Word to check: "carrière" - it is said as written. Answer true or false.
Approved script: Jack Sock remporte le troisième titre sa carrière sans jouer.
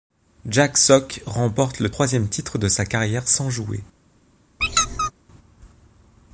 true